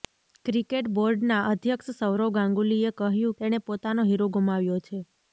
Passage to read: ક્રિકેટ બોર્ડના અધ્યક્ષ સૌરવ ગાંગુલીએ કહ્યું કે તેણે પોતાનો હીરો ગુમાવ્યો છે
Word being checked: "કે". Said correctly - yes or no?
no